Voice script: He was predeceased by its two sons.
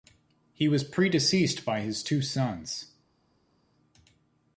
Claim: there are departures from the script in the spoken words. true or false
true